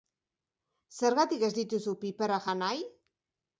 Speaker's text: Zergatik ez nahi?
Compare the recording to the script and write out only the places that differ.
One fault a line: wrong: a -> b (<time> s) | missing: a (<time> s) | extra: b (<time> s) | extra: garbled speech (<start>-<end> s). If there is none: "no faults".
extra: dituzu piperrak jan (1.6 s)